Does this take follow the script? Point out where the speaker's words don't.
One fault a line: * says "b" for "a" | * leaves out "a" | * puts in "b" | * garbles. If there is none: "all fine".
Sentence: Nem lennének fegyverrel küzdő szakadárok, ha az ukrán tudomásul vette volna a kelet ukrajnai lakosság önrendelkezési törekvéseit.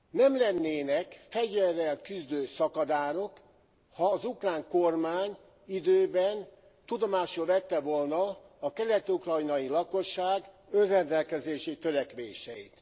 * puts in "kormány időben"